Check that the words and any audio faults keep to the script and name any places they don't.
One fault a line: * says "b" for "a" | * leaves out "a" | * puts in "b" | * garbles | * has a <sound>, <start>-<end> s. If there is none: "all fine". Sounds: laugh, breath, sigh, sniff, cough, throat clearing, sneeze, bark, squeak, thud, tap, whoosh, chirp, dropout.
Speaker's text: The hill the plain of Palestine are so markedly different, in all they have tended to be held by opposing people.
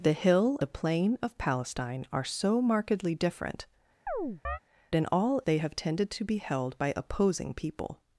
* has a chirp, 4.1-4.6 s